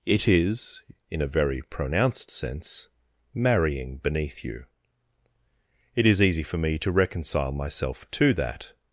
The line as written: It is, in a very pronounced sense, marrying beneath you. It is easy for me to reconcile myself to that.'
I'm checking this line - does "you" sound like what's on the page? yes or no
yes